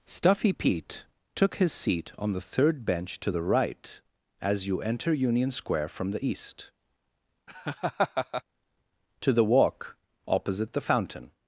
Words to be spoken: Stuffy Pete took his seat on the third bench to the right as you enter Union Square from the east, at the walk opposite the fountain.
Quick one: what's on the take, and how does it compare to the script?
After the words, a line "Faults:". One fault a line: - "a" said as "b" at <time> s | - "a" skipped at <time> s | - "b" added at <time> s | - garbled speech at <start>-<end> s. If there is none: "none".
Stuffy Pete took his seat on the third bench to the right as you enter Union Square from the east, to the walk opposite the fountain.
Faults:
- "at" said as "to" at 9.2 s